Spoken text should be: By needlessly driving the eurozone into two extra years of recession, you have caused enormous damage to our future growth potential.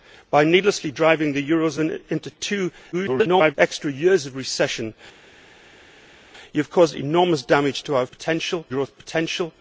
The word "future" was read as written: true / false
false